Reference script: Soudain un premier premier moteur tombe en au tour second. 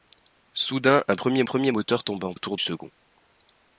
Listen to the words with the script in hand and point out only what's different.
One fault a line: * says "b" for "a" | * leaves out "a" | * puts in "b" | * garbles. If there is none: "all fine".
all fine